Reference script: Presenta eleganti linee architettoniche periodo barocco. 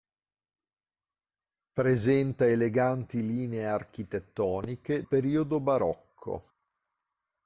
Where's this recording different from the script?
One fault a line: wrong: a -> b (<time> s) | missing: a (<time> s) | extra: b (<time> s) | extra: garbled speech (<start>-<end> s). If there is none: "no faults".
no faults